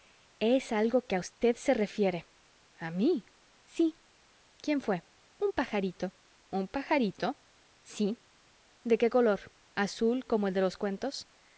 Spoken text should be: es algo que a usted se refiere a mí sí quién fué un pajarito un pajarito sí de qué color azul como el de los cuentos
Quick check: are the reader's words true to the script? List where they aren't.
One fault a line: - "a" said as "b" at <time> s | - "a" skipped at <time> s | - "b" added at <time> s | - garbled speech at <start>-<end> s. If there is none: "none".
none